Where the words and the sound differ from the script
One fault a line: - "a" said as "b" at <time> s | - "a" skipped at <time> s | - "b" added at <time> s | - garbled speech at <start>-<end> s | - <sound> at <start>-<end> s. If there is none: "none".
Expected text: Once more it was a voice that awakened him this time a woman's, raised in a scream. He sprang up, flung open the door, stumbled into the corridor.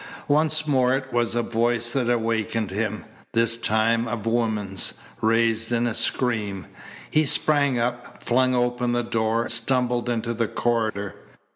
- dropout at 10.9-11.0 s